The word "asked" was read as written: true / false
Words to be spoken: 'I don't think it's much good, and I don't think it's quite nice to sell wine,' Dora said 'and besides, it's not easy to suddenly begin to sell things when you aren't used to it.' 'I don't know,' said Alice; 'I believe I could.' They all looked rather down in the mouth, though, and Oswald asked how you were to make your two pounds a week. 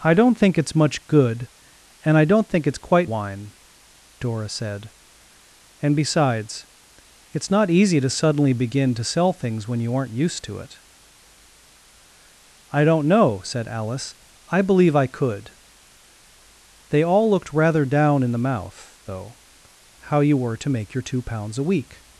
false